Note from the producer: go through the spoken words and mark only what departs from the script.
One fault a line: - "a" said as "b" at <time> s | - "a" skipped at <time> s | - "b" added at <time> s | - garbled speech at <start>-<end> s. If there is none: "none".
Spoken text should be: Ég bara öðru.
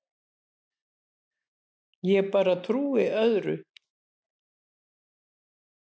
- "trúi" added at 2.7 s